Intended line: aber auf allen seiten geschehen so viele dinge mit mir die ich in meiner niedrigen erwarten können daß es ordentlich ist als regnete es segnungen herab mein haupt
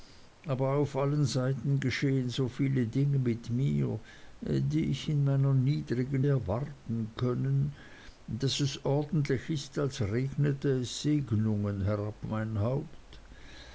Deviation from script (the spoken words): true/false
false